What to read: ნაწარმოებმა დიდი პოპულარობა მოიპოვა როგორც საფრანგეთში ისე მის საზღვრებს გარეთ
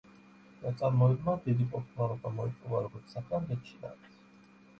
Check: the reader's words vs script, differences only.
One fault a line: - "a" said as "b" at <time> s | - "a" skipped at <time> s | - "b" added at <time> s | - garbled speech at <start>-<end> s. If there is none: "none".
- "ისე მის საზღვრებს" skipped at 3.8 s